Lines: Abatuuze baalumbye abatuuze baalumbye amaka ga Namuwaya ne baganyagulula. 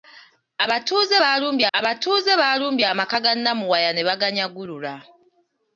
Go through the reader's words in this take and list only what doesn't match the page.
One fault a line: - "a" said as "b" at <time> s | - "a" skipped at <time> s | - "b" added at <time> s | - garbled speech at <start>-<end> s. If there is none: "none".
none